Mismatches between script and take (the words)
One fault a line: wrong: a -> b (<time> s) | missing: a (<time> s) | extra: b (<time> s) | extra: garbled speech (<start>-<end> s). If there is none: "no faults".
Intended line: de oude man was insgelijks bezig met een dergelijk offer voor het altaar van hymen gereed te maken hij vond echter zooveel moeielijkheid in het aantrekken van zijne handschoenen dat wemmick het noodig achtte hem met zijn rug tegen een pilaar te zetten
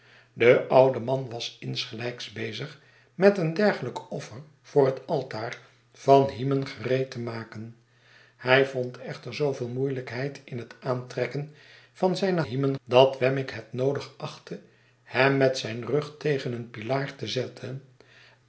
wrong: handschoenen -> hymen (12.4 s)